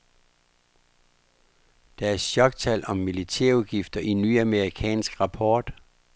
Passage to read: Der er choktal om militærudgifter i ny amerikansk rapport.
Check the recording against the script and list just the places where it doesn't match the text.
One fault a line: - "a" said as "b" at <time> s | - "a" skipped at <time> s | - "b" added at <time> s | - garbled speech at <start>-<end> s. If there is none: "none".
none